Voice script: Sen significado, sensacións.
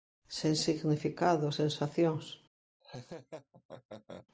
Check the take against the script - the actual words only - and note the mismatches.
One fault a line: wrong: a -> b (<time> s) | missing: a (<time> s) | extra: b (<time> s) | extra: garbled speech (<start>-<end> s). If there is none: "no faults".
no faults